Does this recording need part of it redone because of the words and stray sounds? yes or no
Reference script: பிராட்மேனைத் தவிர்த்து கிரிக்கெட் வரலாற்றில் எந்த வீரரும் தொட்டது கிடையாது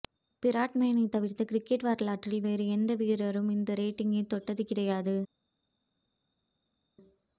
yes